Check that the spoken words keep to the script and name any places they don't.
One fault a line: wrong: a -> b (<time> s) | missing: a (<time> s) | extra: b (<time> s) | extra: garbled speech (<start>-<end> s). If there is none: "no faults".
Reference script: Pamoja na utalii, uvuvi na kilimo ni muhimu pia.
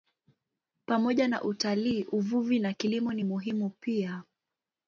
no faults